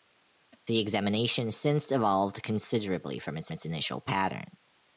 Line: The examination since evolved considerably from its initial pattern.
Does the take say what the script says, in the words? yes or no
no